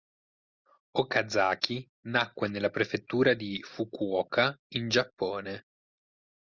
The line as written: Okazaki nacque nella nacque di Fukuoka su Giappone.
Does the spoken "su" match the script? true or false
false